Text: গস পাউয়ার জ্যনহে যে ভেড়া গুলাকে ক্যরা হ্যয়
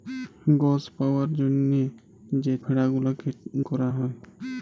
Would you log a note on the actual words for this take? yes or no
no